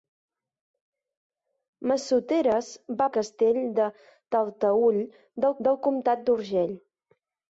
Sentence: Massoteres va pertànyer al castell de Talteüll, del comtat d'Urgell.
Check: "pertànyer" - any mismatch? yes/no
yes